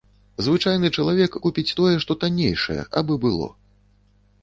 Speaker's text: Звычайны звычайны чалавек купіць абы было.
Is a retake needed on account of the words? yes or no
yes